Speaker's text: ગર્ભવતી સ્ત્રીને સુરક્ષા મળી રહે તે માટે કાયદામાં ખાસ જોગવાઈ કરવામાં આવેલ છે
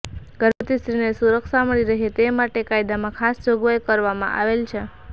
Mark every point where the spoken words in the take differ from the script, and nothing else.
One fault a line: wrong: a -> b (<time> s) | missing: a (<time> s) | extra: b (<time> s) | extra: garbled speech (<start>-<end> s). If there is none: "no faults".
no faults